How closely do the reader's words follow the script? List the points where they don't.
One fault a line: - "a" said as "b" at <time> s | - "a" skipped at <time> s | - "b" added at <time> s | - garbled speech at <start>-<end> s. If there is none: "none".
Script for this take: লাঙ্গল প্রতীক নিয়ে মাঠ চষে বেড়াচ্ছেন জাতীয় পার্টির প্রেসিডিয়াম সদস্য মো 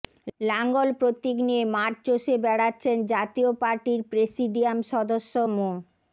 none